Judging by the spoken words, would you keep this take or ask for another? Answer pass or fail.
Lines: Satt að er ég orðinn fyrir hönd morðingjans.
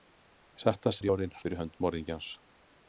pass